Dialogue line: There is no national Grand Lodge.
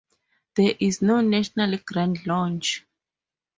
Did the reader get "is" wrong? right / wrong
right